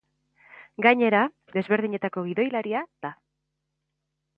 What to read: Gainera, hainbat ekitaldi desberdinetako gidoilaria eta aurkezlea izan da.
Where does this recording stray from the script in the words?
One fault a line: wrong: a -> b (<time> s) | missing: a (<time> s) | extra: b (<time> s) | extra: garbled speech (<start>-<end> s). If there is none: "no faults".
missing: hainbat ekitaldi (1.2 s)
missing: eta aurkezlea izan (2.8 s)